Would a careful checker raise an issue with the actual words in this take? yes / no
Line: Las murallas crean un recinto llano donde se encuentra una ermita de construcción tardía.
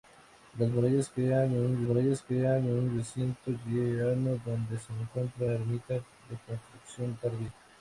yes